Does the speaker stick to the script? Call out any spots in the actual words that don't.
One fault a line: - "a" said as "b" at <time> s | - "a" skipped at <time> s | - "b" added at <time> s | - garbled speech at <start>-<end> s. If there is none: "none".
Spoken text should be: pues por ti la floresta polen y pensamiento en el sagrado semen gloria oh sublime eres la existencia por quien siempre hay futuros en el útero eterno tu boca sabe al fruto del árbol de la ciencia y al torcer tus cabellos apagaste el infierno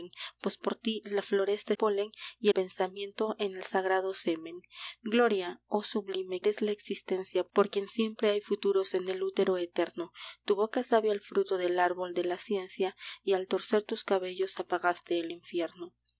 none